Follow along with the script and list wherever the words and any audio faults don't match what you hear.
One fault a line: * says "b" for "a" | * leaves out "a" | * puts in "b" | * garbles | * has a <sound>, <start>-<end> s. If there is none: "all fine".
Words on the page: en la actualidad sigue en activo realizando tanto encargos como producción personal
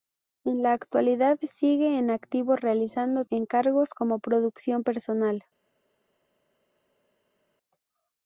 * leaves out "tanto"